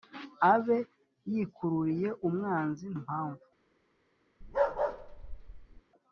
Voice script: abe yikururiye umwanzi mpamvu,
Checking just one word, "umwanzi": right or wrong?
right